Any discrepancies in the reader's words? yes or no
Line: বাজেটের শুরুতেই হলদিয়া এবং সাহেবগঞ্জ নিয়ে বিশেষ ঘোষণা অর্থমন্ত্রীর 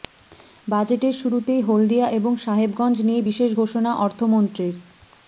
no